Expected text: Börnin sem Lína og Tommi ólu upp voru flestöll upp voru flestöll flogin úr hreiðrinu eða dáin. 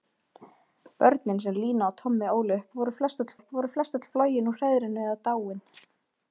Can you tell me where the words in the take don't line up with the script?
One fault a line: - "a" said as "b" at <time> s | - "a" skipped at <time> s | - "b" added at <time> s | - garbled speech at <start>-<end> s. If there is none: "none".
none